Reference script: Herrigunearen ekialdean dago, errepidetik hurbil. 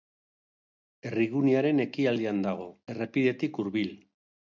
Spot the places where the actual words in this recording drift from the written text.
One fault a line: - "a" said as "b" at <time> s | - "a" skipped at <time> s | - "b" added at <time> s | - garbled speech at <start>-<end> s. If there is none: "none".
none